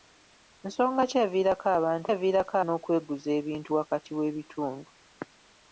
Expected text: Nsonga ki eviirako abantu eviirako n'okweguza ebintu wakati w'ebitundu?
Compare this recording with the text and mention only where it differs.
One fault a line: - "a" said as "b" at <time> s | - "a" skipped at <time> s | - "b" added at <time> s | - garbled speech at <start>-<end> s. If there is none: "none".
none